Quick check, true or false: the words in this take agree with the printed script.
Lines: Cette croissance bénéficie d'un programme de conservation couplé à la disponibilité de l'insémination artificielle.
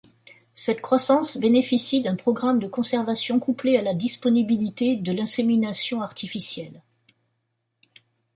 true